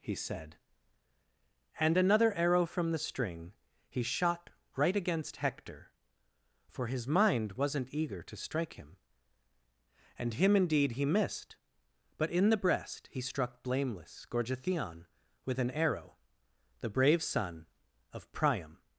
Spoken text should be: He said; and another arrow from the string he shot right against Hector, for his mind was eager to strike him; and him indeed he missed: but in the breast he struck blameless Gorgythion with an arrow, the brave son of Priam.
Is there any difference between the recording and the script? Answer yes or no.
yes